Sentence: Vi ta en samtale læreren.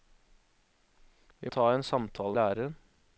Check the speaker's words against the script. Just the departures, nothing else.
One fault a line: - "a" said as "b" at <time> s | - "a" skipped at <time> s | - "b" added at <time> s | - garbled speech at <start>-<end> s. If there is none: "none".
none